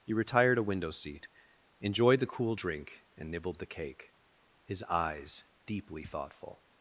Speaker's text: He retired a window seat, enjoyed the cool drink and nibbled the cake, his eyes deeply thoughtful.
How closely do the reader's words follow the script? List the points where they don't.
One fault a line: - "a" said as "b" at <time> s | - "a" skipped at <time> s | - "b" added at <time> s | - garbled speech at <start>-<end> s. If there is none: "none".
none